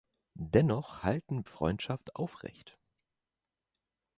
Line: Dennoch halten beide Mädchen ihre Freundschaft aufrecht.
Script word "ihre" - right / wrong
wrong